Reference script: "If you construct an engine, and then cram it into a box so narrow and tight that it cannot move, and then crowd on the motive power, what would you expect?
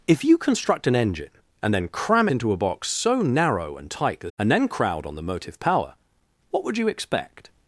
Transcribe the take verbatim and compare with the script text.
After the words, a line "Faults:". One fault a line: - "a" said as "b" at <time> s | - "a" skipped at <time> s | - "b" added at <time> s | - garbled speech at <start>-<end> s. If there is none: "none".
"If you construct an engine, and then cram into a box so narrow and tight that and then crowd on the motive power, what would you expect?
Faults:
- "it" skipped at 2.3 s
- "it cannot move" skipped at 4.3 s